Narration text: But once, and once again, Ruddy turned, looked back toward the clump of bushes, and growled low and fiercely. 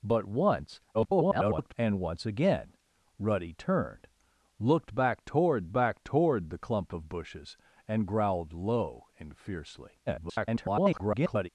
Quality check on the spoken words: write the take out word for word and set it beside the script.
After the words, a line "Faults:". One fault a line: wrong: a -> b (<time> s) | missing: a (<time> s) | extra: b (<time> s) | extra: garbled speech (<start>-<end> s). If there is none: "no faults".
But once, [garbled] and once again, Ruddy turned, looked back toward back toward the clump of bushes, and growled low and fiercely. [garbled]
Faults:
extra: garbled speech (0.9-1.7 s)
extra: back toward (5.7 s)
extra: garbled speech (10.1-11.5 s)